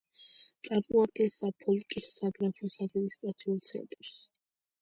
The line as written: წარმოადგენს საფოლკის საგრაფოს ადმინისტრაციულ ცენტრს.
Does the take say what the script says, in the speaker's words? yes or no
yes